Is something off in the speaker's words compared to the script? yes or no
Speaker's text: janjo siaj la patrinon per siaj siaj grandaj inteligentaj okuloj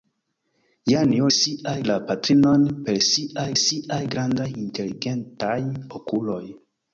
no